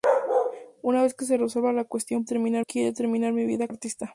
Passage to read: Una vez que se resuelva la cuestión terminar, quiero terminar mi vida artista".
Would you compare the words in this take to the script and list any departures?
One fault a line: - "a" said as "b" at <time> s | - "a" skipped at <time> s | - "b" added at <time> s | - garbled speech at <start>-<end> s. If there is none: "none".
none